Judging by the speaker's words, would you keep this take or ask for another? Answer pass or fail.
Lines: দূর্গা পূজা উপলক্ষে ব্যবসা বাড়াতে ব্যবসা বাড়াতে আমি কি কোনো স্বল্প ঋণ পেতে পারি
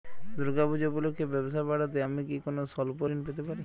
fail